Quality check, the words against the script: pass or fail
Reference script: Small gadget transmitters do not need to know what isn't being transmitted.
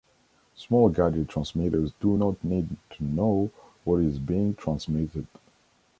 fail